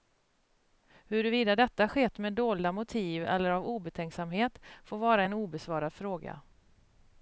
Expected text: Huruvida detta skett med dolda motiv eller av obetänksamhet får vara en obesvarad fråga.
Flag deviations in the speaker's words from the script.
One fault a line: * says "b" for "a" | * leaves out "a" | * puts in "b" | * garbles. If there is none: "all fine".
all fine